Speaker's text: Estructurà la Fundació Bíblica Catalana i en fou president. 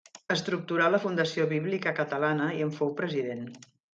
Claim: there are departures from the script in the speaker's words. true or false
false